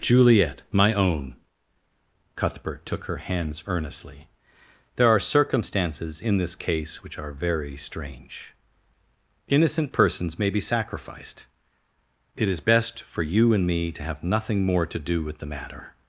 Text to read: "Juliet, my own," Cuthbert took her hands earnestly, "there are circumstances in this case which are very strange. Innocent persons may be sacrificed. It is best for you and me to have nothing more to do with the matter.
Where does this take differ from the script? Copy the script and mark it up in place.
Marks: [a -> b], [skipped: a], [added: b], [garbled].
"Juliet, my own," Cuthbert took her hands earnestly, "there are circumstances in this case which are very strange. Innocent persons may be sacrificed. It is best for you and me to have nothing more to do with the matter.